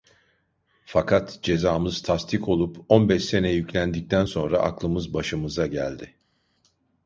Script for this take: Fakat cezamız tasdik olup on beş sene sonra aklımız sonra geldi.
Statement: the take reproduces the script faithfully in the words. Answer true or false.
false